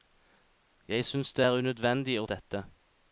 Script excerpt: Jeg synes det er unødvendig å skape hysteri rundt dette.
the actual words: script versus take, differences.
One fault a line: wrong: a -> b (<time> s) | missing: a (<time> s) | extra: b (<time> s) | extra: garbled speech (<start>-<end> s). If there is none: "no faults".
missing: skape hysteri rundt (2.3 s)